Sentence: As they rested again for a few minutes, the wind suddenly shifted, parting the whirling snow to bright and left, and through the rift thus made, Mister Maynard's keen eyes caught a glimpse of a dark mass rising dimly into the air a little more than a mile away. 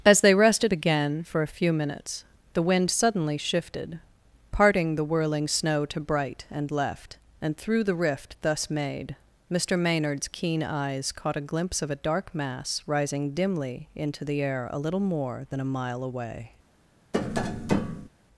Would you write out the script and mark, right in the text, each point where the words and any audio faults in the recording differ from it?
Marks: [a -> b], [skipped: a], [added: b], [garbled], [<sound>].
As they rested again for a few minutes, the wind suddenly shifted, parting the whirling snow to bright and left, and through the rift thus made, Mister Maynard's keen eyes caught a glimpse of a dark mass rising dimly into the air a little more than a mile away. [tap]